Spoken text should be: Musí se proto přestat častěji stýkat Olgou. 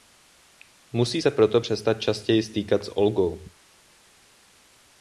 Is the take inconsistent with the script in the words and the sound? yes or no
yes